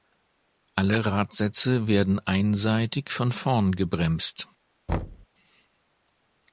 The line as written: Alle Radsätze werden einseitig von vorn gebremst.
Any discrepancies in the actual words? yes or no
no